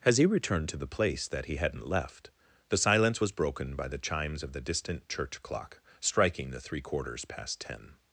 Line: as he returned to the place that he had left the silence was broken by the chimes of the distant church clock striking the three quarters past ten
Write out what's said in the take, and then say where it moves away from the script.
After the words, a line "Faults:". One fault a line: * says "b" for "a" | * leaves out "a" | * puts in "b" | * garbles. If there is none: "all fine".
as he returned to the place that he hadn't left the silence was broken by the chimes of the distant church clock striking the three quarters past ten
Faults:
* says "hadn't" for "had"